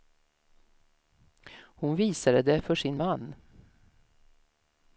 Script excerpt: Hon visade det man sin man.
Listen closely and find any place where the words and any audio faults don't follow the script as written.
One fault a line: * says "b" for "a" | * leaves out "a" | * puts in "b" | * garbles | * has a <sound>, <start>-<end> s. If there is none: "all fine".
* says "för" for "man"